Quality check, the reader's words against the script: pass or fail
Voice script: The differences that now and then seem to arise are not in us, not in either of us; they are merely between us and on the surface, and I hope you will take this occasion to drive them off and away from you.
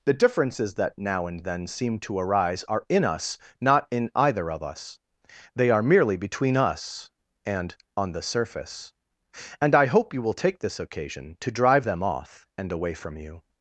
fail